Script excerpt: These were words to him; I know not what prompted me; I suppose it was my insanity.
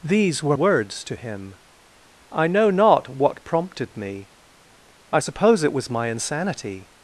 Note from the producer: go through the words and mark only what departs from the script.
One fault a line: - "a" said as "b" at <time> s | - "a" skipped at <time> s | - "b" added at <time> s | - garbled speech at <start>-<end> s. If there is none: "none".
none